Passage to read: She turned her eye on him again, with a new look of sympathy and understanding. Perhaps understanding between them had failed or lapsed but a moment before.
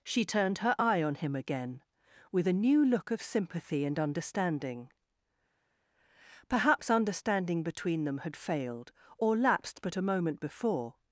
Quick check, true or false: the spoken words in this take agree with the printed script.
true